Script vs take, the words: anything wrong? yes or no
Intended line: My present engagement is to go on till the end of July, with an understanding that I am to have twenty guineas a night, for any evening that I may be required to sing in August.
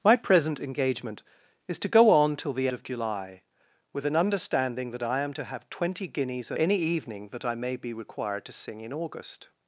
yes